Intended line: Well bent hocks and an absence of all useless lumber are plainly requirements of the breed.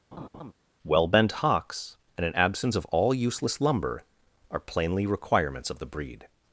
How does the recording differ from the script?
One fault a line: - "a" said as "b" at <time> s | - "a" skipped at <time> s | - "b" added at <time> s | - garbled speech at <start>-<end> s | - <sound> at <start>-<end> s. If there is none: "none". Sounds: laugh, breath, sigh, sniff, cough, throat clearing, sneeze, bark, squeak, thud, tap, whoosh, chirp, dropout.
- laugh at 0.1-0.5 s